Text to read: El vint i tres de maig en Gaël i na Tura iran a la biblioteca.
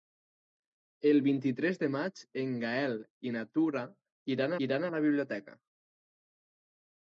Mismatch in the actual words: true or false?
true